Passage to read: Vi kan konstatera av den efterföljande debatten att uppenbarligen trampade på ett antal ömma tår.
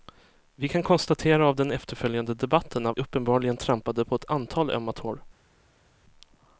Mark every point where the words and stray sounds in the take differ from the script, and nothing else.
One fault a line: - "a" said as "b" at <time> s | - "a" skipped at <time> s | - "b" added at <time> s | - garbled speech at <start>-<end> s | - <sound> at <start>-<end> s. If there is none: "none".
none